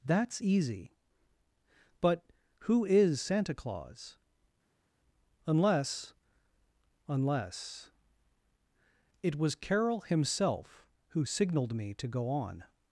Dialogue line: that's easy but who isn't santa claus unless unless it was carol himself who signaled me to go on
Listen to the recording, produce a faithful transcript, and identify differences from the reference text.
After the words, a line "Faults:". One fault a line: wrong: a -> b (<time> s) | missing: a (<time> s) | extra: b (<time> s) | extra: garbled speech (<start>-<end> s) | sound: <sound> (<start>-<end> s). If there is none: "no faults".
that's easy but who is santa claus unless unless it was carol himself who signaled me to go on
Faults:
wrong: isn't -> is (2.8 s)